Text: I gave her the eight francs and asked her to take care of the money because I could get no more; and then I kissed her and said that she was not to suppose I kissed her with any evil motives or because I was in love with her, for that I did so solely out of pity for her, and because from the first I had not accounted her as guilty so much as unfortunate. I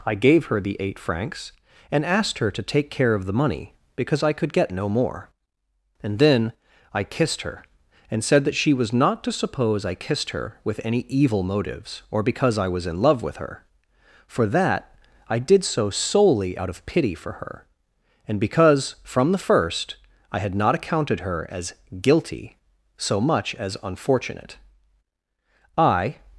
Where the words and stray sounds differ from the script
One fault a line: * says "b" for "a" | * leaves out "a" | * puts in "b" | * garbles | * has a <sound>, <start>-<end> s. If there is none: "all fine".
all fine